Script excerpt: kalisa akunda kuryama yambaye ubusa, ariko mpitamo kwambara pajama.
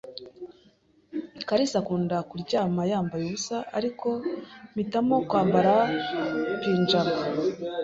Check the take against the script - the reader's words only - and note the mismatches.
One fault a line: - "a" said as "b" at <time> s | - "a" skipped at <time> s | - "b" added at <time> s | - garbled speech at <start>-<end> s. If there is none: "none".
none